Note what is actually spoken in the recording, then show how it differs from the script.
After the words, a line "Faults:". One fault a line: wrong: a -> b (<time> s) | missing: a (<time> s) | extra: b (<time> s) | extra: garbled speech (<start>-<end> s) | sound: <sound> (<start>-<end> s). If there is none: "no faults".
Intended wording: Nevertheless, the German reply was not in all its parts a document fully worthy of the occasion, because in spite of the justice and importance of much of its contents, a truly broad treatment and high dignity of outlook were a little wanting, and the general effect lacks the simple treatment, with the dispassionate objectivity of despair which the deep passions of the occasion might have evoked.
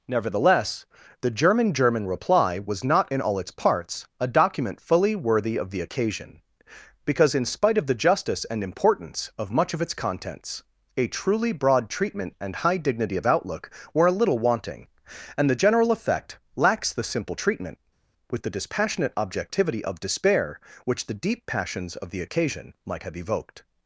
Nevertheless, the German German reply was not in all its parts a document fully worthy of the occasion, because in spite of the justice and importance of much of its contents, a truly broad treatment and high dignity of outlook were a little wanting, and the general effect lacks the simple treatment, with the dispassionate objectivity of despair which the deep passions of the occasion might have evoked.
Faults:
extra: German (1.8 s)